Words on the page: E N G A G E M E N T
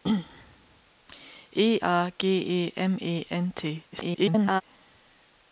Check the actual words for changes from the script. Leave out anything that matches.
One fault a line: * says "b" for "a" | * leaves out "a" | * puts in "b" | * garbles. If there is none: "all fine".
* leaves out "N G"
* garbles